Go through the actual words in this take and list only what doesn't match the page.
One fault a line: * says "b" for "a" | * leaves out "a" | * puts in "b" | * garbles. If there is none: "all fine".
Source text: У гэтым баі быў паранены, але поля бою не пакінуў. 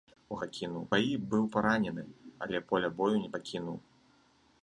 * says "пакінуў" for "гэтым"